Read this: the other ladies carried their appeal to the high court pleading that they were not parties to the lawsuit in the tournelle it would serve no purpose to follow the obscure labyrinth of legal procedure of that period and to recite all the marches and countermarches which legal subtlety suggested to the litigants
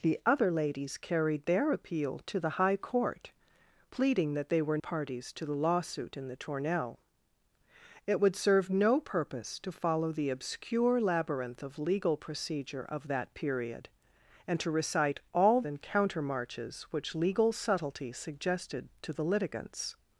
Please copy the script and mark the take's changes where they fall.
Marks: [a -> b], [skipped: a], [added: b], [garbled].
the other ladies carried their appeal to the high court pleading that they were [skipped: not] parties to the lawsuit in the tournelle it would serve no purpose to follow the obscure labyrinth of legal procedure of that period and to recite all [skipped: the marches] and countermarches which legal subtlety suggested to the litigants